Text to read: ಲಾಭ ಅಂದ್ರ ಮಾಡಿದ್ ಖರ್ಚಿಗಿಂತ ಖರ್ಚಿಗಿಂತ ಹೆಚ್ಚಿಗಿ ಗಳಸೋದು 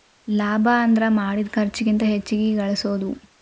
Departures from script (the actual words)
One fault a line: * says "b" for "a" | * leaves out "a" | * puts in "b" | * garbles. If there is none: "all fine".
* leaves out "ಖರ್ಚಿಗಿಂತ"